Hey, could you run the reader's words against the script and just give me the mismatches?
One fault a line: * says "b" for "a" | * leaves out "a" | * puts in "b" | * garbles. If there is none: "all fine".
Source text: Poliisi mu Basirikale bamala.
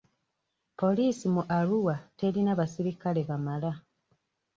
* puts in "Arua terina"